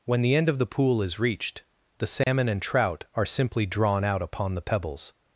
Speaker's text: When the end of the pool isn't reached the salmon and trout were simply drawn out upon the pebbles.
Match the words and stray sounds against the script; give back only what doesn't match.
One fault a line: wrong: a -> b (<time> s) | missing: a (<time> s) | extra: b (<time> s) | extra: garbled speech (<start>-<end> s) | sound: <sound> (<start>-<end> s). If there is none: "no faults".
wrong: isn't -> is (1.0 s)
sound: dropout (2.2-2.3 s)
wrong: were -> are (3.1 s)